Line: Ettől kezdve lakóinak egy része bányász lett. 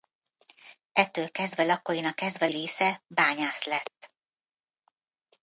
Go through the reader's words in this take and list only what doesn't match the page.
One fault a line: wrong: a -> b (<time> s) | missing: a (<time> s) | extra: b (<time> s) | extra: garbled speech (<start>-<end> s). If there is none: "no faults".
wrong: egy -> kezdve (2.1 s)